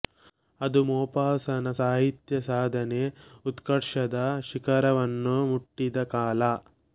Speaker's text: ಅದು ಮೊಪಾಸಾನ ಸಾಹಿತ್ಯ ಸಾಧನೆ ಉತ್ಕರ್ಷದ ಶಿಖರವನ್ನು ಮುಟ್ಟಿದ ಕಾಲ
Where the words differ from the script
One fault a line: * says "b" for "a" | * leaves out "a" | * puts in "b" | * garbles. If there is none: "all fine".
all fine